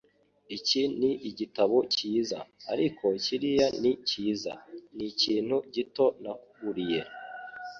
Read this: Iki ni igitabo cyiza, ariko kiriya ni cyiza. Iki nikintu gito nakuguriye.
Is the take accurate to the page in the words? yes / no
no